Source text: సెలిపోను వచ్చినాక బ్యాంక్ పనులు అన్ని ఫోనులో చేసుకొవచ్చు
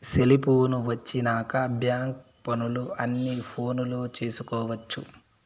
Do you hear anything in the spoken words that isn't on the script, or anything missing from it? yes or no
no